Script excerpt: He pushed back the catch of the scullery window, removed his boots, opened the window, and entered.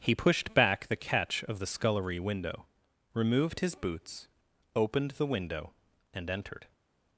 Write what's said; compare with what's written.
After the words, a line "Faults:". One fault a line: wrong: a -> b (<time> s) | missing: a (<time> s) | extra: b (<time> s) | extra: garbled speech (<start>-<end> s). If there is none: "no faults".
He pushed back the catch of the scullery window, removed his boots, opened the window, and entered.
Faults:
no faults